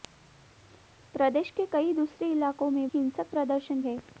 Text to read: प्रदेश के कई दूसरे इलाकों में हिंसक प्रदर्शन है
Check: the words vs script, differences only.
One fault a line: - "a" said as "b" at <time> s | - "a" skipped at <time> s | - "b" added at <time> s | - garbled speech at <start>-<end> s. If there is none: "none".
none